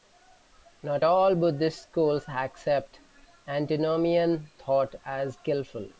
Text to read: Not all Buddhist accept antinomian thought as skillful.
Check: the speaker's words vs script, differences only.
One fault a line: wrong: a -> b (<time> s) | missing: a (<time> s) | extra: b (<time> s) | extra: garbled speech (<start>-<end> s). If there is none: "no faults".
extra: schools (1.8 s)